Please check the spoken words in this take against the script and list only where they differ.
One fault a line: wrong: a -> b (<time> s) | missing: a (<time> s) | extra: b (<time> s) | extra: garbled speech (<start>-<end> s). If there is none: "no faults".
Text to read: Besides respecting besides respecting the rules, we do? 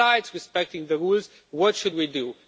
wrong: besides respecting the rules -> the rules what should (0.9 s)